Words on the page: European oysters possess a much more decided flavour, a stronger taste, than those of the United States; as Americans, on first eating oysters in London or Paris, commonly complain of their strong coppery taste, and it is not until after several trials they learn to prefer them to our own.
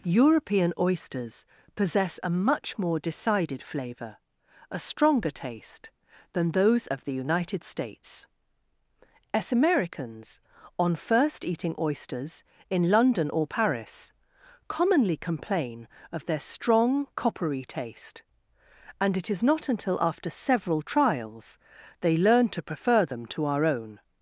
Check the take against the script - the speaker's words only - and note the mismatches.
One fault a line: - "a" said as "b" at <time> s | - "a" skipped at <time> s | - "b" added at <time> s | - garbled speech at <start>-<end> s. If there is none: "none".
none